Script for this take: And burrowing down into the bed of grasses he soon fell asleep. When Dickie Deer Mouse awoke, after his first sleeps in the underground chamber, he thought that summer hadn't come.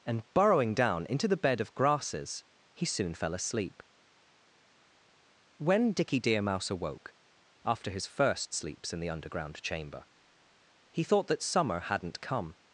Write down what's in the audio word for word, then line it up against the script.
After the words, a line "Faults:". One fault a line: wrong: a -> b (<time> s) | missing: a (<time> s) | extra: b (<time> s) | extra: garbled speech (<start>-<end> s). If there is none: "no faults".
And burrowing down into the bed of grasses he soon fell asleep. When Dickie Deer Mouse awoke, after his first sleeps in the underground chamber, he thought that summer hadn't come.
Faults:
no faults